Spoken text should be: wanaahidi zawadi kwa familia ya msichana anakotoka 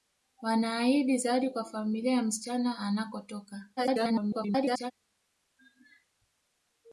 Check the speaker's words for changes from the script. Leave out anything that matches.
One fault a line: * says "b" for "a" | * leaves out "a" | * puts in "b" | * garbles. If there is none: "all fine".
* garbles